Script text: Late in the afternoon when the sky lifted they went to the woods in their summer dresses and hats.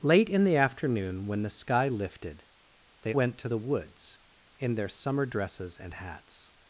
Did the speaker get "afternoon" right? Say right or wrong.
right